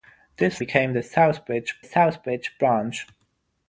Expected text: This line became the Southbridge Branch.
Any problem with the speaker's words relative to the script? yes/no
yes